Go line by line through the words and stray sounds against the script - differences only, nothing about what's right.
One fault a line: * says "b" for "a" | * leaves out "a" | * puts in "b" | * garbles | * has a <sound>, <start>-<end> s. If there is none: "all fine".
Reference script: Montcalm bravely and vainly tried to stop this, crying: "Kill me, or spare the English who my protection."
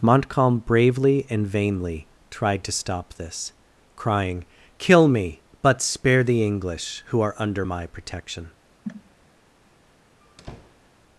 * says "but" for "or"
* puts in "are under"
* has a cough, 8.8-9.1 s
* has a squeak, 10.2-10.9 s